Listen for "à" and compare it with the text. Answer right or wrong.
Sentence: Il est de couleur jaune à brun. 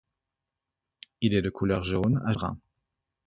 right